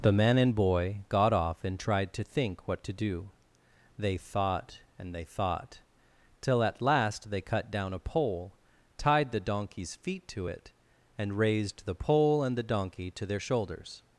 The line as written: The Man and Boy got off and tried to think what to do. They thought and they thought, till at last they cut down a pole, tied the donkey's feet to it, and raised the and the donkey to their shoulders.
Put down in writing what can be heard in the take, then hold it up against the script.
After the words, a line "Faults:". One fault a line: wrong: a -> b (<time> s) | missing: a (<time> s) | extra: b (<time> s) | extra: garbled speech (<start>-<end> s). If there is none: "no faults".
The Man and Boy got off and tried to think what to do. They thought and they thought, till at last they cut down a pole, tied the donkey's feet to it, and raised the pole and the donkey to their shoulders.
Faults:
extra: pole (11.9 s)